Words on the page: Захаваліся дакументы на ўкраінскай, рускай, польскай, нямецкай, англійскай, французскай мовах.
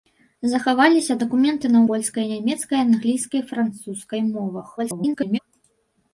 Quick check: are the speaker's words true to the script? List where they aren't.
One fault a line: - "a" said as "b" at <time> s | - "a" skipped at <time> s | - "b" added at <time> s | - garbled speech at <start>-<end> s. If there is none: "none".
- "ўкраінскай рускай" skipped at 1.8 s
- garbled speech at 4.8-5.4 s